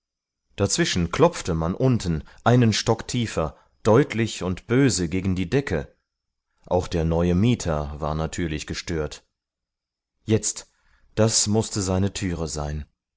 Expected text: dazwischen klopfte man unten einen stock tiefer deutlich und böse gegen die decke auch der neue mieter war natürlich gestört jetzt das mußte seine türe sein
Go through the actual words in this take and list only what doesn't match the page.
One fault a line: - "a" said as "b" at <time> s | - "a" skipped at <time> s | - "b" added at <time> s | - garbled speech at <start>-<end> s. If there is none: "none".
none